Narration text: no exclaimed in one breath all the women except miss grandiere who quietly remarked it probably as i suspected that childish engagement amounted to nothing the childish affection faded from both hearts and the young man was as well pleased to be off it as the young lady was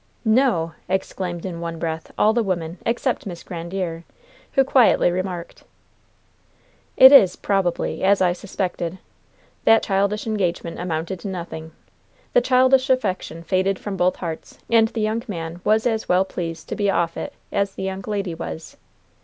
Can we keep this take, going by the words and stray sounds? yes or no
no